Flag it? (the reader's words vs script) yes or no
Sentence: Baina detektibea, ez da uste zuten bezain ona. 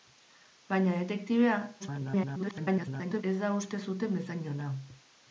yes